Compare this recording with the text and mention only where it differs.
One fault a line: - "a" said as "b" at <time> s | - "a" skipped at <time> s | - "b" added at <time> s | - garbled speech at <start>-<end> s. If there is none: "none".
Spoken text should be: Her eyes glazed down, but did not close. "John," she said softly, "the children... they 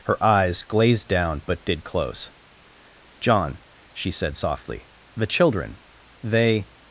- "not" skipped at 1.8 s